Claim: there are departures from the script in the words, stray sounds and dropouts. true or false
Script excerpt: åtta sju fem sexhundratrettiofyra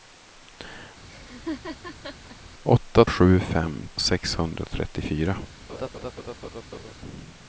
true